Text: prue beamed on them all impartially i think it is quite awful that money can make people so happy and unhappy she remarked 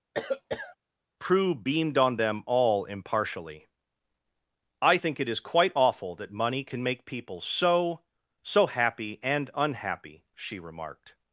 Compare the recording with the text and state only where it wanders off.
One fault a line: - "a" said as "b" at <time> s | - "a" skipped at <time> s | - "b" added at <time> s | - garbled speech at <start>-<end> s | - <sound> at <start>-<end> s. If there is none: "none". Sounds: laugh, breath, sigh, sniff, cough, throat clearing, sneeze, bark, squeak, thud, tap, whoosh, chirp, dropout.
- cough at 0.1-0.8 s
- "so" added at 8.4 s